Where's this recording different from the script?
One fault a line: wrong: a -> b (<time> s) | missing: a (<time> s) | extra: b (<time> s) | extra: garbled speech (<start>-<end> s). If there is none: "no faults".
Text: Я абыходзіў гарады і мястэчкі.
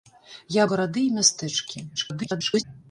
missing: абыходзіў (0.6 s)
extra: garbled speech (2.0-2.6 s)